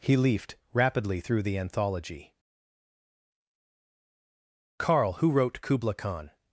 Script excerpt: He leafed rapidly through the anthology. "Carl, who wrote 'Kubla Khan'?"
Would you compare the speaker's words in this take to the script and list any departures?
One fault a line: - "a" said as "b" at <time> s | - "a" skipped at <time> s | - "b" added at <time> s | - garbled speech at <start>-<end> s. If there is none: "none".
none